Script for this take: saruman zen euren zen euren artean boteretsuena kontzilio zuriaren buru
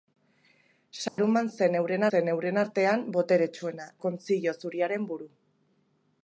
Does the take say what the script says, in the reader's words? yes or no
yes